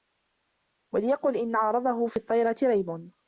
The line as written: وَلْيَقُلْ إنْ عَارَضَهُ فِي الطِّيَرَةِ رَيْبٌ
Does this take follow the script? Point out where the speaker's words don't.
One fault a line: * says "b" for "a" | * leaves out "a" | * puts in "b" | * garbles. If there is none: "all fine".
all fine